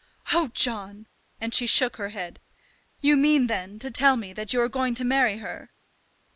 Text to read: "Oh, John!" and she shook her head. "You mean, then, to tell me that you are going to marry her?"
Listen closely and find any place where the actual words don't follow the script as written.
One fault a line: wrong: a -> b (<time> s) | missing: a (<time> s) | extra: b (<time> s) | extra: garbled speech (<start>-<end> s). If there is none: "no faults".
no faults